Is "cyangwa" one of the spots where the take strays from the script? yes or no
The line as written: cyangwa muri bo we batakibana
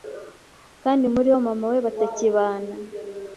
yes